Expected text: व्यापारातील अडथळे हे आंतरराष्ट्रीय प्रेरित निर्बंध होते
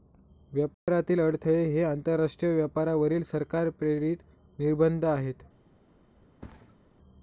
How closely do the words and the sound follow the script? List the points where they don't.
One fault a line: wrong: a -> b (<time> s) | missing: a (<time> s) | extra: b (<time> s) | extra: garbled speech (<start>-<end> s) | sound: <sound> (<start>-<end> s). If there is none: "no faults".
sound: dropout (0.7-0.9 s)
extra: व्यापारावरील सरकार (2.5 s)
wrong: होते -> आहेत (5.1 s)
sound: thud (6.4-6.8 s)